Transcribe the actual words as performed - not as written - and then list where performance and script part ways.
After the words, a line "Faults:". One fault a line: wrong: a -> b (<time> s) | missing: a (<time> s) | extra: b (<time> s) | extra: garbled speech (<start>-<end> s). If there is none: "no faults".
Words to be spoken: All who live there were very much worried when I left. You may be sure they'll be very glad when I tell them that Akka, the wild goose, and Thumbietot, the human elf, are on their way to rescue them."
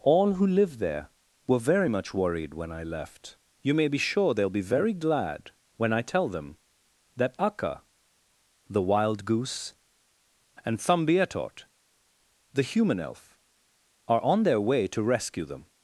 All who live there were very much worried when I left. You may be sure they'll be very glad when I tell them that Akka, the wild goose, and Thumbietot, the human elf, are on their way to rescue them."
Faults:
no faults